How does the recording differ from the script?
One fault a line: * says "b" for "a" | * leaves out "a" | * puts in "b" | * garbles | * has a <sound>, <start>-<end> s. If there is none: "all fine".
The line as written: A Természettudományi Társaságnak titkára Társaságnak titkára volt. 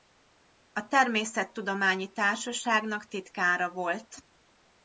* leaves out "Társaságnak titkára"